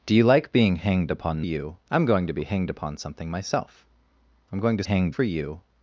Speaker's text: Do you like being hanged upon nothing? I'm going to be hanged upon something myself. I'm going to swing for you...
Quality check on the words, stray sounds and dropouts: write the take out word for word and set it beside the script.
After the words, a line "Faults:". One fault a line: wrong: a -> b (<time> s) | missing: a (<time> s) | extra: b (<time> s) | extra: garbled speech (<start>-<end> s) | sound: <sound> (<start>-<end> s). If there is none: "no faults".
Do you like being hanged upon you? I'm going to be hanged upon something myself. I'm going to hanged for you...
Faults:
wrong: nothing -> you (1.4 s)
wrong: swing -> hanged (4.8 s)